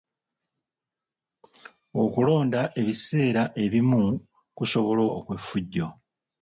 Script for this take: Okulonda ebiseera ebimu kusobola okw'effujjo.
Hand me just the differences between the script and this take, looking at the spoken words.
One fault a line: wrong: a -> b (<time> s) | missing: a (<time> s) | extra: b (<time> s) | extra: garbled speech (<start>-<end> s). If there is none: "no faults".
no faults